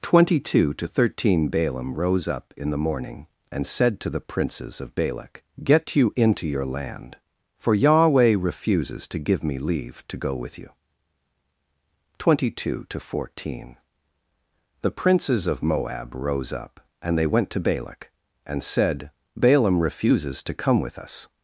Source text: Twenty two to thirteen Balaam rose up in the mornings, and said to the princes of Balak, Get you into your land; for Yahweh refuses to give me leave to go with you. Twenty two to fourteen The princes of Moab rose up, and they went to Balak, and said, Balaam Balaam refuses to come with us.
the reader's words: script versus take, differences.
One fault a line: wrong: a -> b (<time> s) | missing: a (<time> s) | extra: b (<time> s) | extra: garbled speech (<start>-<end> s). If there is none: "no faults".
wrong: mornings -> morning (2.8 s)
missing: Balaam (19.8 s)